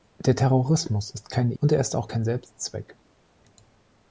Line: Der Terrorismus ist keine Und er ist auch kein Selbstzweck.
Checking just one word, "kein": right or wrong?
right